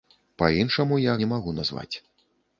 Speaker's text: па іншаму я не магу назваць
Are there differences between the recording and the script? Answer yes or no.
no